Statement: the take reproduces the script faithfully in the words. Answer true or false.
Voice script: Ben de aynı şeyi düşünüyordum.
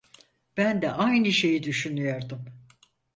true